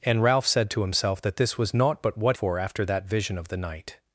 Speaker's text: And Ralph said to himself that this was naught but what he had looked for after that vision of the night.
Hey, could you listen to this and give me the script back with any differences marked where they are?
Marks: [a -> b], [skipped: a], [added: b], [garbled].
And Ralph said to himself that this was naught but what [skipped: he had looked] for after that vision of the night.